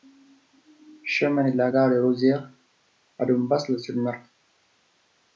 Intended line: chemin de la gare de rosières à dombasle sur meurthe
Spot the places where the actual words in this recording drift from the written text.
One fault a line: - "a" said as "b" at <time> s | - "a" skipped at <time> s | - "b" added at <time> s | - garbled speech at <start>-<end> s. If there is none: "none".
none